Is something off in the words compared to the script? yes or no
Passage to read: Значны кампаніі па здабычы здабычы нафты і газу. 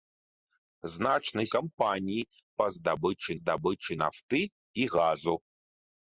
no